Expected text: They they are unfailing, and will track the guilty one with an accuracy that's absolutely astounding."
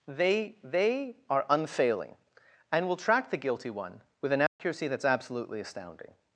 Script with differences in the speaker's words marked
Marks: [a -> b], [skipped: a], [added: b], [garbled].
They they are unfailing, and will track the guilty one with an accuracy that's absolutely astounding."